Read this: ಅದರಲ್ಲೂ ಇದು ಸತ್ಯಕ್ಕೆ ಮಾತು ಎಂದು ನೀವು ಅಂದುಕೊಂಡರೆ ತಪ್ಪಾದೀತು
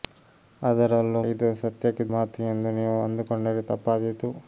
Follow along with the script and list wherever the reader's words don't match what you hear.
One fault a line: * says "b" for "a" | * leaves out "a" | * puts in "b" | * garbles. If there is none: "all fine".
all fine